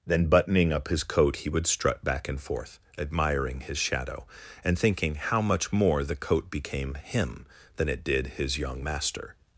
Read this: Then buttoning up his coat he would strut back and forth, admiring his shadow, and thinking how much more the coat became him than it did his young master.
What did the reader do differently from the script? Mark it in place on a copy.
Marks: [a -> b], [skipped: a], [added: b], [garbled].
Then buttoning up his coat he would strut back and forth, admiring his shadow, and thinking how much more the coat became him than it did his young master.